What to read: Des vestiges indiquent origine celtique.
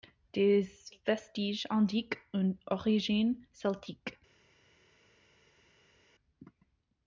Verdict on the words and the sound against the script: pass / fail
fail